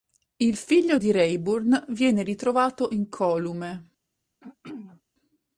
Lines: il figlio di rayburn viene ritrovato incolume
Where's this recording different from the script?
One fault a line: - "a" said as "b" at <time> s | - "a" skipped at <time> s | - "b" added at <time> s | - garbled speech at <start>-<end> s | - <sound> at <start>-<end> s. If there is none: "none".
- throat clearing at 4.4-5.0 s